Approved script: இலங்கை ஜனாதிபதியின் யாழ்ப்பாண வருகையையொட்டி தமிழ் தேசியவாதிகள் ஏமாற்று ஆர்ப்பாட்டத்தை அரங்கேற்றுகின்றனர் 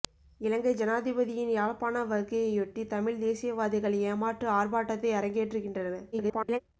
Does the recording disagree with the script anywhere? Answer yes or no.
yes